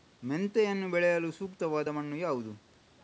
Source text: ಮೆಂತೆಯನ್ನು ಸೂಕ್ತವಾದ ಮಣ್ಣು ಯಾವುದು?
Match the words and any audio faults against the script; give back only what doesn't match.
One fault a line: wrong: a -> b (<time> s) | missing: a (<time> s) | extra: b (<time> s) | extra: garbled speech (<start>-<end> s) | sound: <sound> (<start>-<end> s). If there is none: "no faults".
extra: ಬೆಳೆಯಲು (0.9 s)